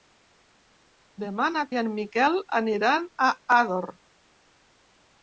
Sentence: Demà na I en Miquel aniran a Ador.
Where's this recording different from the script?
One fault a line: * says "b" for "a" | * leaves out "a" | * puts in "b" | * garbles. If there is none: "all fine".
all fine